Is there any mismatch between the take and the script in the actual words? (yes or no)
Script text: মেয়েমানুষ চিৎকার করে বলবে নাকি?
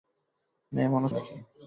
yes